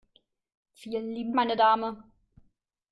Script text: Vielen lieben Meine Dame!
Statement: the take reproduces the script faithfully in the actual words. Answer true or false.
true